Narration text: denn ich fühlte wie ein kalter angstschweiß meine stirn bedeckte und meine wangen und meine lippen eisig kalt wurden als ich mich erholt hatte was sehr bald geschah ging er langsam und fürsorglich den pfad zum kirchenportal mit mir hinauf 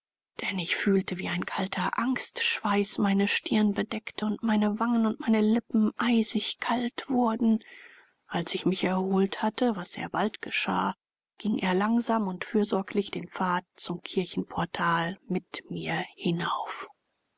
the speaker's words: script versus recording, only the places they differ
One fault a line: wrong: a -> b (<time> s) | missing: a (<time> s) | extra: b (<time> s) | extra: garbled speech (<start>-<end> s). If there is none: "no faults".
no faults